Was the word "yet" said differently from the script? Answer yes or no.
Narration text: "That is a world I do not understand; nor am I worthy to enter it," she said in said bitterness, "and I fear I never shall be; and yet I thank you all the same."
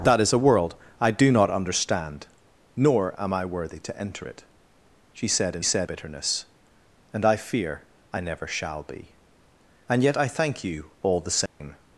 no